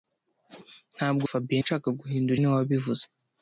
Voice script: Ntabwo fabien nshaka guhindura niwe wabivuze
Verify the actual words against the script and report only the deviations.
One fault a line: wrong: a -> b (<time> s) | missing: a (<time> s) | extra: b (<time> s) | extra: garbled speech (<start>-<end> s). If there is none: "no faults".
no faults